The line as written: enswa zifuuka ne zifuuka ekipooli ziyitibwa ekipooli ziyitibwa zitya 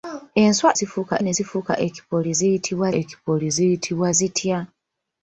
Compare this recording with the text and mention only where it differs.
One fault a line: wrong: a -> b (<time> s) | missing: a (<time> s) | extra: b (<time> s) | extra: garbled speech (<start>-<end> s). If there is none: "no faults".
no faults